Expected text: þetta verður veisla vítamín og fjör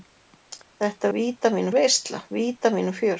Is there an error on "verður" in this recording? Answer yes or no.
yes